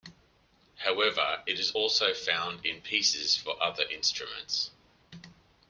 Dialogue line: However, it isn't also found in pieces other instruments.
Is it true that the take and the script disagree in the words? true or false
true